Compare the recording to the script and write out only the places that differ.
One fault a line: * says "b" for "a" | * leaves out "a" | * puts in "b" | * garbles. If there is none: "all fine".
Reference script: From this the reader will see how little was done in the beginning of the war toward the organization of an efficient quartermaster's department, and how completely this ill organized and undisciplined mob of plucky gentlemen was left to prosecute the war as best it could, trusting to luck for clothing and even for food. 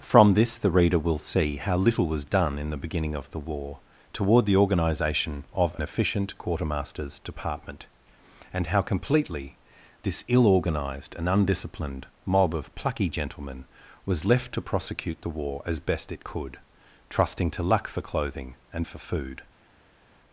* leaves out "an"
* leaves out "even"